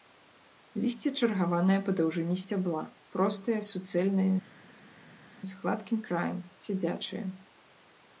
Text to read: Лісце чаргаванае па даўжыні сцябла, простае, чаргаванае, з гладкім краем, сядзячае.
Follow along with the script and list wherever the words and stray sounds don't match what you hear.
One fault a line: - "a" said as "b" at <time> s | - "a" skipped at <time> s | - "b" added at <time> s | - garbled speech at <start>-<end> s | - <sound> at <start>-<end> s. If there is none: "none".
- "чаргаванае" said as "суцэльнае" at 3.7 s